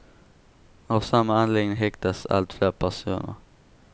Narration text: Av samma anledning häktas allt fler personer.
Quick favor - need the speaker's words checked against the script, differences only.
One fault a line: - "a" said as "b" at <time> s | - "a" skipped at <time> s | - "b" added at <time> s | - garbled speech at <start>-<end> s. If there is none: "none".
none